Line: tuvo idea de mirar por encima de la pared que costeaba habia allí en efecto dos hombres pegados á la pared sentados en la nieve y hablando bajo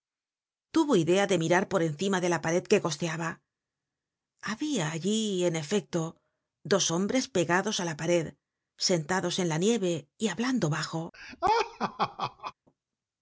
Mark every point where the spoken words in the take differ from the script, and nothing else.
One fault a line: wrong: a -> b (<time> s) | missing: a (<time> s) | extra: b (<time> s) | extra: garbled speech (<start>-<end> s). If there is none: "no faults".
no faults